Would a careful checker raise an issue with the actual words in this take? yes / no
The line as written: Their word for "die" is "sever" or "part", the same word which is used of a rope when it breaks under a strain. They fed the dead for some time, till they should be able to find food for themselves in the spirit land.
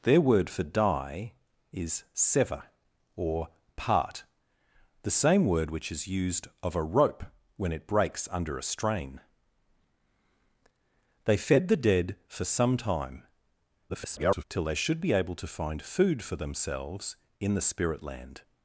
yes